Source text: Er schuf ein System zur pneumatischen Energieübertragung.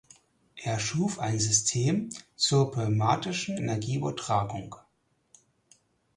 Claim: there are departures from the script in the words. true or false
false